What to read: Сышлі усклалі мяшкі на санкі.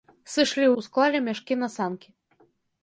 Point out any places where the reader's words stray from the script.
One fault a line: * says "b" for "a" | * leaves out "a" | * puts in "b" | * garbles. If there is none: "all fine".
all fine